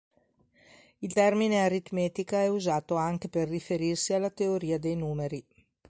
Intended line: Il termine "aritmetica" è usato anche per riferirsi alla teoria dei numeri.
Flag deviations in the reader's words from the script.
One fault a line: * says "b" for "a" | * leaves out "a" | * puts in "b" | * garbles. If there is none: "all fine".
all fine